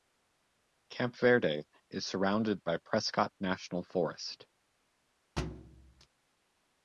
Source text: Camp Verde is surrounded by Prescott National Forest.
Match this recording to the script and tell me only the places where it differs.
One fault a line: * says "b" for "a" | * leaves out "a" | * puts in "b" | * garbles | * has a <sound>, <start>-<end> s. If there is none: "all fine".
* has a thud, 5.4-6.1 s